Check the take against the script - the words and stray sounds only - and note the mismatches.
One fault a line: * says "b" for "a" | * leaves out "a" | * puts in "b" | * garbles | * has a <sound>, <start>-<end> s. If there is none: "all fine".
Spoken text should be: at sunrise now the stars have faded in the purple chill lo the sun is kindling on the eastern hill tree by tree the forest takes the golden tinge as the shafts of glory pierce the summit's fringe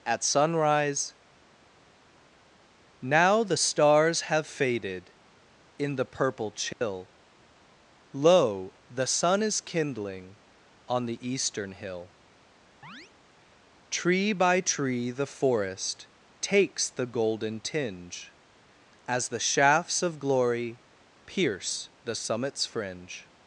* has a dropout, 6.7-6.8 s
* has a chirp, 12.8-13.1 s